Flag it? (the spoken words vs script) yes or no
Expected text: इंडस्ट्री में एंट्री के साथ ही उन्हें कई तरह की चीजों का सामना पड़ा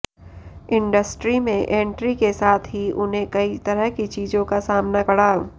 no